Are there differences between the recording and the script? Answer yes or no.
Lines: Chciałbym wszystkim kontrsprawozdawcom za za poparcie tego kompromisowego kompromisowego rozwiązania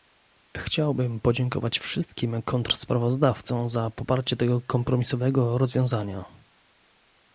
yes